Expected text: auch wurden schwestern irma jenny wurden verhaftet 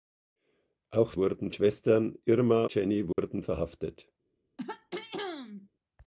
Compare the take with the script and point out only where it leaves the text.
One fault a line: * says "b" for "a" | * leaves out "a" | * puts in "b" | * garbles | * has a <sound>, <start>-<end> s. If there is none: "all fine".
* has a dropout, 3.1-3.2 s
* has a throat clearing, 4.6-5.7 s